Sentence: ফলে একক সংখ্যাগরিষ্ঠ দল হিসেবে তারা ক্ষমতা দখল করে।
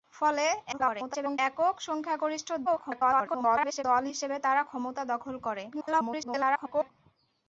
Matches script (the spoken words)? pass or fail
fail